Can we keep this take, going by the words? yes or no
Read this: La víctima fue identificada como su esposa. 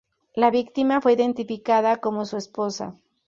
yes